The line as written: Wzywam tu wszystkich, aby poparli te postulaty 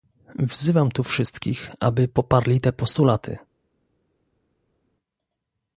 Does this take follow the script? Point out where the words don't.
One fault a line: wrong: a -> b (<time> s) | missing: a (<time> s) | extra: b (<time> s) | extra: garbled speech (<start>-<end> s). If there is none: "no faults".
no faults